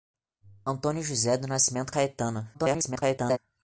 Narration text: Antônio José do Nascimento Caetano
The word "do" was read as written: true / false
true